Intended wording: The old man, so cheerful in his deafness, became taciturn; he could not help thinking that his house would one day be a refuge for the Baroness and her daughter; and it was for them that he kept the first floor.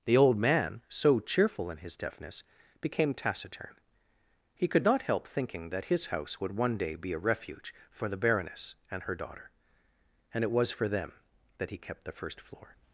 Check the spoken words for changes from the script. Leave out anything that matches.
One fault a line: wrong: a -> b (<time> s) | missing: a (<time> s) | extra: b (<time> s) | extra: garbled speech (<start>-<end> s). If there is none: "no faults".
no faults